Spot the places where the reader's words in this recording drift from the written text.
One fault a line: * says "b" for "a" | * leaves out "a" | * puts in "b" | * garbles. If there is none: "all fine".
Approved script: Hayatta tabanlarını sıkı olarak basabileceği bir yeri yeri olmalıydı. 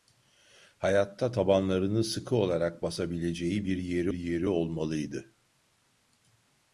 all fine